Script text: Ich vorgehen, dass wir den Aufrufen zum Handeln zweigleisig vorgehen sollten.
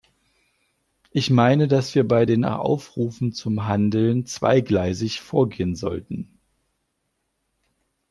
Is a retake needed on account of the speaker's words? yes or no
yes